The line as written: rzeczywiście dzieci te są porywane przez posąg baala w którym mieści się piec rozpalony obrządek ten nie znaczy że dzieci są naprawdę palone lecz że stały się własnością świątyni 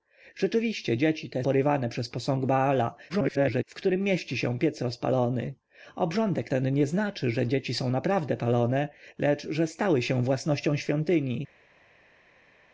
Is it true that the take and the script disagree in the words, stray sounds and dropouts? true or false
true